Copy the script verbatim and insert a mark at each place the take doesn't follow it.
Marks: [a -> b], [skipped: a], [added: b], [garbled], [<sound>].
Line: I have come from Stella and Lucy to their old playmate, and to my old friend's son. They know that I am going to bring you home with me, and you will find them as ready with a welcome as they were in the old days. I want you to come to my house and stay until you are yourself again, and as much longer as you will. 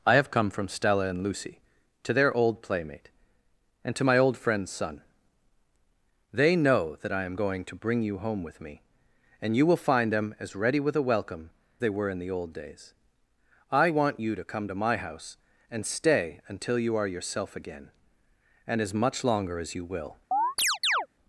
I have come from Stella and Lucy to their old playmate, and to my old friend's son. They know that I am going to bring you home with me, and you will find them as ready with a welcome [skipped: as] they were in the old days. I want you to come to my house and stay until you are yourself again, and as much longer as you will. [chirp]